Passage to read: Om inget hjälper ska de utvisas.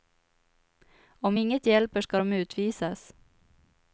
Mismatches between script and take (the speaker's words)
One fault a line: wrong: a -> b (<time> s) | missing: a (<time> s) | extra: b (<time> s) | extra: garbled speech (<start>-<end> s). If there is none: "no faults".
no faults